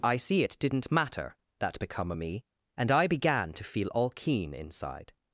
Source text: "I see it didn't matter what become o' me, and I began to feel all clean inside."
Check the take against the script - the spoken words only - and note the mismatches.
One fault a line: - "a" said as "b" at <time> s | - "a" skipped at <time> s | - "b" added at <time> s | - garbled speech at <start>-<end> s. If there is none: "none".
- "what" said as "that" at 1.6 s
- "clean" said as "keen" at 4.1 s